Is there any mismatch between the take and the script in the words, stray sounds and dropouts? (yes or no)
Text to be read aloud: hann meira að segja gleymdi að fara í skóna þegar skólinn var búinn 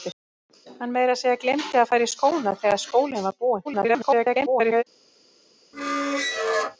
yes